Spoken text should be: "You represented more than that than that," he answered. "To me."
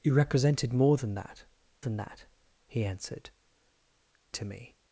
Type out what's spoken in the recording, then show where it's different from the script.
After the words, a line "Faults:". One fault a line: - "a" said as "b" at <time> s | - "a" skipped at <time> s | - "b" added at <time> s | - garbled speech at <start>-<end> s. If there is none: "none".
"You represented more than that than that," he answered. "To me."
Faults:
none